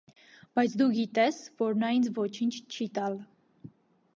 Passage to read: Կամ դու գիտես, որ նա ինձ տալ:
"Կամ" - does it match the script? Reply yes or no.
no